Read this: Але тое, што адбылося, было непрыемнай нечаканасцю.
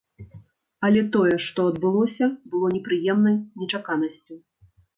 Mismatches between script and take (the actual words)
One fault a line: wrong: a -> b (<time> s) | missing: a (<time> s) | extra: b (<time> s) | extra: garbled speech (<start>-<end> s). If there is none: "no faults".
no faults